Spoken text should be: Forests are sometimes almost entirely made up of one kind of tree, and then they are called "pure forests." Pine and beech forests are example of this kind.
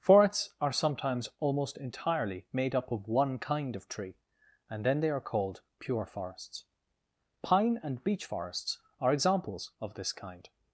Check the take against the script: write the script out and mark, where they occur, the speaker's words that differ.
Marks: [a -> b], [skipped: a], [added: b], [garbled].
Forests are sometimes almost entirely made up of one kind of tree, and then they are called "pure forests." Pine and beech forests are [example -> examples] of this kind.